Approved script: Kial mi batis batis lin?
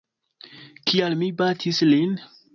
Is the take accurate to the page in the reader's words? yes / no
no